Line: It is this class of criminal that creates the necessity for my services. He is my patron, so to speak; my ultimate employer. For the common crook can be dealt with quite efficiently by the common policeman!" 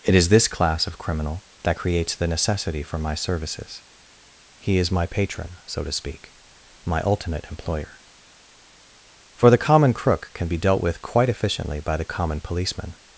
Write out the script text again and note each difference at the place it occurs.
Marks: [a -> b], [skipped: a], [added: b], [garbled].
It is this class of criminal that creates the necessity for my services. He is my patron, so to speak; my ultimate employer. For the common crook can be dealt with quite efficiently by the common policeman!"